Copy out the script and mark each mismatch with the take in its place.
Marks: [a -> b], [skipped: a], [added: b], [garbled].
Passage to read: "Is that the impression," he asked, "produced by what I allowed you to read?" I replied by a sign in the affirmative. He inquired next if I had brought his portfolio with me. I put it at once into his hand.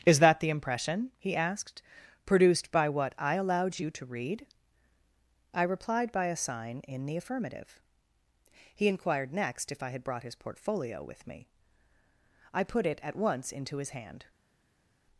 "Is that the impression," he asked, "produced by what I allowed you to read?" I replied by a sign in the affirmative. He inquired next if I had brought his portfolio with me. I put it at once into his hand.